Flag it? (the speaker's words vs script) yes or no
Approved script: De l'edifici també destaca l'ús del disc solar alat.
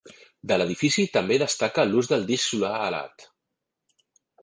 no